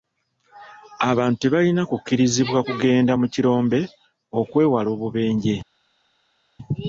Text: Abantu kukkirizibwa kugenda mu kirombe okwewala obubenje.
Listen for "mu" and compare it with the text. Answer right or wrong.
right